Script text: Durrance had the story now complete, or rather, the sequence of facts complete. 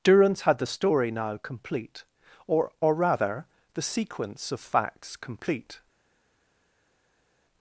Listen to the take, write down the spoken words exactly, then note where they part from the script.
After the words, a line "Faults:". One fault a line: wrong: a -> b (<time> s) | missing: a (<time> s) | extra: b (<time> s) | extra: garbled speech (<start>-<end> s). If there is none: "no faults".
Durrance had the story now complete, or or rather, the sequence of facts complete.
Faults:
extra: or (2.8 s)